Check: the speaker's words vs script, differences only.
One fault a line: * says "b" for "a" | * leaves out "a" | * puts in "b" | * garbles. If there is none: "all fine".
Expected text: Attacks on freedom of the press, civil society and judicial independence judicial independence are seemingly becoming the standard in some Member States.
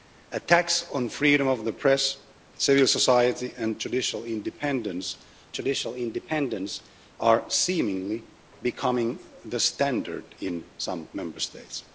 all fine